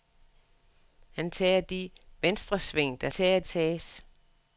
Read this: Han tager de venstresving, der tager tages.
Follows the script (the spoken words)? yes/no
yes